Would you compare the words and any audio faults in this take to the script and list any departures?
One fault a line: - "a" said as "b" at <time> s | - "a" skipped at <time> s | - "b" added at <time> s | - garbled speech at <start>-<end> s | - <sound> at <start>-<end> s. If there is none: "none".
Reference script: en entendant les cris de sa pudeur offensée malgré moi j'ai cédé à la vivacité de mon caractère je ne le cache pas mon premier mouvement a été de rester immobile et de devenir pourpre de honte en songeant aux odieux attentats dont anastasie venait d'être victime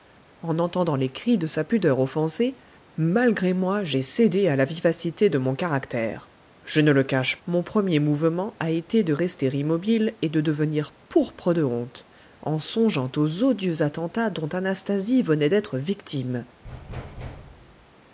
- "pas" skipped at 7.4 s
- thud at 16.6-17.9 s